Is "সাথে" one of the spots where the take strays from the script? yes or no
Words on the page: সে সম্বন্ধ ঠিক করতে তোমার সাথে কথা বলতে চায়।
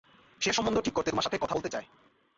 no